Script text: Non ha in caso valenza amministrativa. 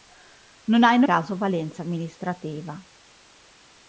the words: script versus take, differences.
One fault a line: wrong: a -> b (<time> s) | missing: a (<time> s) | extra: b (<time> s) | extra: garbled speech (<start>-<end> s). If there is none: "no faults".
no faults